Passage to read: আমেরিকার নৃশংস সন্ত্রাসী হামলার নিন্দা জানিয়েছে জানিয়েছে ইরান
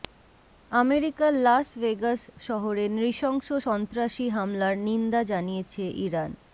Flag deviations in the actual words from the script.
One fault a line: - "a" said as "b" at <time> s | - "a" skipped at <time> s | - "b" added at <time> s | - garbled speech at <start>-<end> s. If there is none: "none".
- "লাস ভেগাস শহরে" added at 1.4 s
- "জানিয়েছে" skipped at 5.8 s